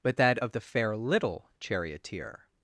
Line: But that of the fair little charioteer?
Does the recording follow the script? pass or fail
pass